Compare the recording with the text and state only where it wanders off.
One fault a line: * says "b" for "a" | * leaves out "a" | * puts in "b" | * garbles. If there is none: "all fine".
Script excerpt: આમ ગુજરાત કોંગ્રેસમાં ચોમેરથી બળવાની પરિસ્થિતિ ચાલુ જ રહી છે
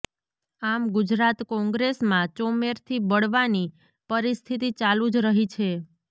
all fine